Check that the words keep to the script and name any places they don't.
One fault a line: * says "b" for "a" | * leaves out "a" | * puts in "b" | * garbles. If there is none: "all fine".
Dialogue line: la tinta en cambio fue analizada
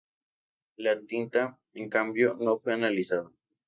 * puts in "no"